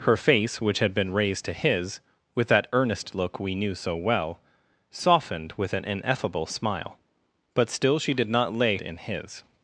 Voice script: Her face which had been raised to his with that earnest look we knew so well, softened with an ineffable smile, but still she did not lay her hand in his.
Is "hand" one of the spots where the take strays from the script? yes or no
yes